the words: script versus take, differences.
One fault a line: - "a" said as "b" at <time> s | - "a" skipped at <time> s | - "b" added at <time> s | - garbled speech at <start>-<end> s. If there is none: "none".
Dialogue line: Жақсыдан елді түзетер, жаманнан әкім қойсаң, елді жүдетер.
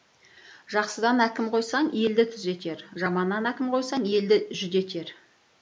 - "әкім қойсаң" added at 1.2 s